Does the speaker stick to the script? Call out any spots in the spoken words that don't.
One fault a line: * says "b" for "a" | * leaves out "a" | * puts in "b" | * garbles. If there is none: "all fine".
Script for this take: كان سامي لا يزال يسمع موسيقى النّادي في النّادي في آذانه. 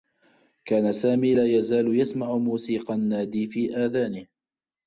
* leaves out "النّادي في"